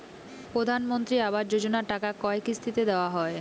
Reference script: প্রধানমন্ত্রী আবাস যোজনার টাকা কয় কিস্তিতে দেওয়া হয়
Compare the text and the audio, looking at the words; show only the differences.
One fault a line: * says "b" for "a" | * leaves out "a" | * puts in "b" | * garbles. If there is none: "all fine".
all fine